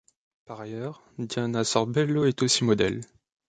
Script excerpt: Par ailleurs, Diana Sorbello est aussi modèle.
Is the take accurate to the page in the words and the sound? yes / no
yes